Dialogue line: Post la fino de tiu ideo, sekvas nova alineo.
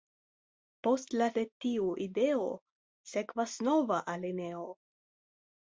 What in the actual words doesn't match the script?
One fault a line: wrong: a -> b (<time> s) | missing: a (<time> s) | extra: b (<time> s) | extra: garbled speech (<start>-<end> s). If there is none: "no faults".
missing: fino (1.3 s)